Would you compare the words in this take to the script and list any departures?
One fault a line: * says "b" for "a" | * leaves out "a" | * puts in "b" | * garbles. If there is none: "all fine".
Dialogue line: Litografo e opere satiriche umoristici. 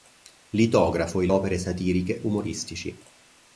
all fine